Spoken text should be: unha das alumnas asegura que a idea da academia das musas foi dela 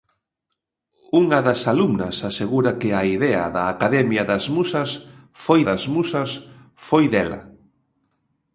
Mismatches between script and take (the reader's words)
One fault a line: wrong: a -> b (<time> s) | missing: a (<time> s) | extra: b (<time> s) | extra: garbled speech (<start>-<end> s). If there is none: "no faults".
extra: das musas foi (5.7 s)